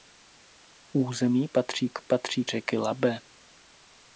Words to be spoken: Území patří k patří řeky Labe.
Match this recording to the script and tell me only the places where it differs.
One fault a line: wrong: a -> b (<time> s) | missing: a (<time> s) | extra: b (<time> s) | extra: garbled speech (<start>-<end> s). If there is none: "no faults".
no faults